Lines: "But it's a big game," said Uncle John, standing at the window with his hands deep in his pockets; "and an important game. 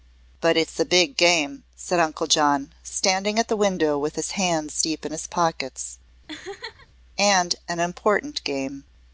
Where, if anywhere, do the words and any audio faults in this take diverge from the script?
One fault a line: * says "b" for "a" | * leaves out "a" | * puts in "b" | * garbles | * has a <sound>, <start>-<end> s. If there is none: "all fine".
* has a laugh, 6.3-6.9 s